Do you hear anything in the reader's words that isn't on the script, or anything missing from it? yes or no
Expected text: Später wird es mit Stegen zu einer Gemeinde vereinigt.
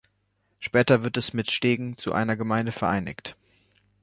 no